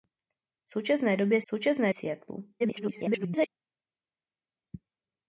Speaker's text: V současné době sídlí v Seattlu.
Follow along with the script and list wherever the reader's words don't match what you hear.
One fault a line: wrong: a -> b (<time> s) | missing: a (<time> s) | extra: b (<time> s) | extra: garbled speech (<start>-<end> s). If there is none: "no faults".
wrong: sídlí -> současné (1.5 s)
extra: garbled speech (2.6-3.5 s)